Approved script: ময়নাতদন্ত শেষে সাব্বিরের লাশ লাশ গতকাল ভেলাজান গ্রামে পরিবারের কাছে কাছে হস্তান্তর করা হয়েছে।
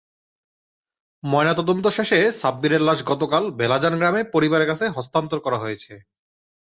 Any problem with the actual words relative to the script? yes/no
yes